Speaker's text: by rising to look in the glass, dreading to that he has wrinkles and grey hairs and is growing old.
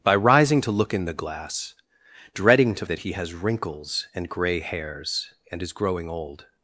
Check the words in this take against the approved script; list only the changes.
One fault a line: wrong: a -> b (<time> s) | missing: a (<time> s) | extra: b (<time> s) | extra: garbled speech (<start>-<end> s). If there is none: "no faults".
no faults